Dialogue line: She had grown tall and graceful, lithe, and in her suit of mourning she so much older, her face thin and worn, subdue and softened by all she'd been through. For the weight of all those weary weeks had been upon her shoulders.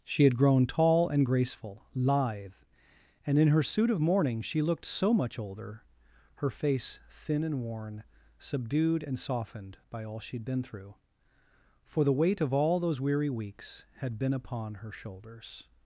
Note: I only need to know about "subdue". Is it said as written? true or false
false